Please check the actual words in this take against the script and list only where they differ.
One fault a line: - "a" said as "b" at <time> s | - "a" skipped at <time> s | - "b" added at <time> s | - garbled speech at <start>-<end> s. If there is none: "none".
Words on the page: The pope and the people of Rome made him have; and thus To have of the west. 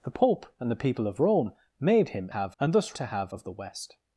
none